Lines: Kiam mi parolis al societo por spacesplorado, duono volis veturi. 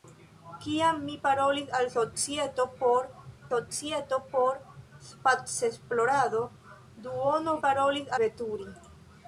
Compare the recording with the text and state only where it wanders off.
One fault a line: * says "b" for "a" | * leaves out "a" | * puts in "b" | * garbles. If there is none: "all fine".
* puts in "societo por"
* says "parolis" for "volis"